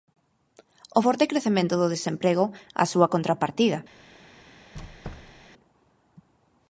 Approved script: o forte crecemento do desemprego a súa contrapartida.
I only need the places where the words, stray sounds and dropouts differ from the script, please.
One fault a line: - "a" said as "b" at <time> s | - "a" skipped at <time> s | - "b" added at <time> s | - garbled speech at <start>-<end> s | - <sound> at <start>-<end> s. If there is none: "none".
- squeak at 4.7-5.5 s